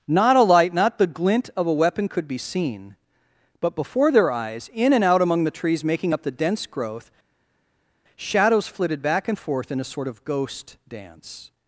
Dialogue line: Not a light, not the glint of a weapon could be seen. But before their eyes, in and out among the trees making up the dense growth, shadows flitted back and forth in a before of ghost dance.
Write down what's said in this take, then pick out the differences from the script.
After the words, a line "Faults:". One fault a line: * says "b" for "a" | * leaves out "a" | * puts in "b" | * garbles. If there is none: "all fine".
Not a light, not the glint of a weapon could be seen. But before their eyes, in and out among the trees making up the dense growth, shadows flitted back and forth in a sort of ghost dance.
Faults:
* says "sort" for "before"